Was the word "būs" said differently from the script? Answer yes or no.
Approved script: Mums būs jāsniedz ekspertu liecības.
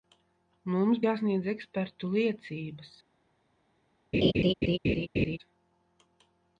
yes